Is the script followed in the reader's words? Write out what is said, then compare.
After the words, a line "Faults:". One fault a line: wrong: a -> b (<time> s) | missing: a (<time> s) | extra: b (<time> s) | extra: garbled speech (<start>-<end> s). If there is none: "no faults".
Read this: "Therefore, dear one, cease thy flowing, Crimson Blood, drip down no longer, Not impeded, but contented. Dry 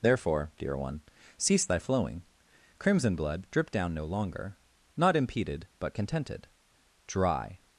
"Therefore, dear one, cease thy flowing, Crimson Blood, drip down no longer, Not impeded, but contented. Dry
Faults:
no faults